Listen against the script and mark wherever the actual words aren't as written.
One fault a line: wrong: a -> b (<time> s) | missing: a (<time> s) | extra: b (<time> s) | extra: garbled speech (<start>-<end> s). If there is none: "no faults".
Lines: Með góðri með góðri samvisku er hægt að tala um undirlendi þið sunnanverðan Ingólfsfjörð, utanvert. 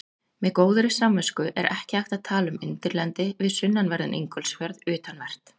missing: með góðri (0.9 s)
extra: ekki (1.8 s)
wrong: þið -> við (3.4 s)